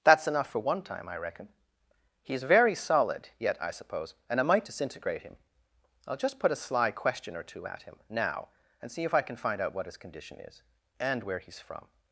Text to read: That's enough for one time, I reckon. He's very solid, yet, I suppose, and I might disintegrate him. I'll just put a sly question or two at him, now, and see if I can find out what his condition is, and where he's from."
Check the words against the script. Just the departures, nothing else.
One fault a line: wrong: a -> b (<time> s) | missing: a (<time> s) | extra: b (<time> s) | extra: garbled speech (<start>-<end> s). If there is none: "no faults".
no faults